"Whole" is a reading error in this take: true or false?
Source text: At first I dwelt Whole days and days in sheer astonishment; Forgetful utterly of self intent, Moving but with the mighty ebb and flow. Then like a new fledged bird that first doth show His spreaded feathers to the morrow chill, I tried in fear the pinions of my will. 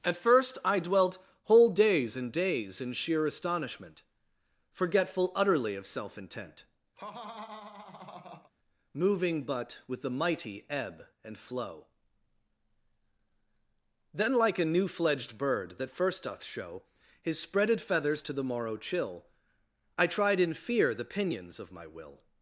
false